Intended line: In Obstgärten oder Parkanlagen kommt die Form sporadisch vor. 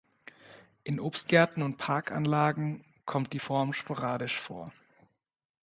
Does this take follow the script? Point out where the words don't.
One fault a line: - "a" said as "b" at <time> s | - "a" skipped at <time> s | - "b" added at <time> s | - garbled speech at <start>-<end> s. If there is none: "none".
- "oder" said as "und" at 1.6 s